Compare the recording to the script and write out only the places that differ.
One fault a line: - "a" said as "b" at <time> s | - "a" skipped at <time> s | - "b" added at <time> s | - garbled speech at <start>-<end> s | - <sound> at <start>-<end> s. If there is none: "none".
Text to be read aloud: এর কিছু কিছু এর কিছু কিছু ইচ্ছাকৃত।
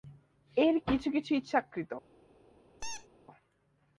- "এর কিছু কিছু" skipped at 1.3 s
- squeak at 2.8-3.1 s